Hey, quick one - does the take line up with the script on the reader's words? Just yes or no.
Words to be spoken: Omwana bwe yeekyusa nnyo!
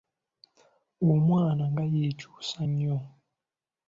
no